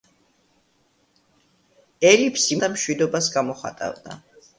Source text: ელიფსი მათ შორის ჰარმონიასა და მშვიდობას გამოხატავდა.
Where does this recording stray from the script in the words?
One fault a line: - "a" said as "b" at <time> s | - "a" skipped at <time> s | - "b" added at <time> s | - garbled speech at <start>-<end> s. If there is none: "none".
- "მათ შორის ჰარმონიასა" skipped at 2.6 s